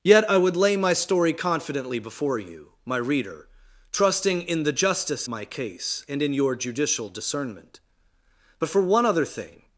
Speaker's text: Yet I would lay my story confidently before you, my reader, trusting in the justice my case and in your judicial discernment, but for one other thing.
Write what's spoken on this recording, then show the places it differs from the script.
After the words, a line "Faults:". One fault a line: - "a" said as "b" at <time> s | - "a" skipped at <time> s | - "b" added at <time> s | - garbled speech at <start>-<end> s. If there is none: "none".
Yet I would lay my story confidently before you, my reader, trusting in the justice my case and in your judicial discernment, but for one other thing.
Faults:
none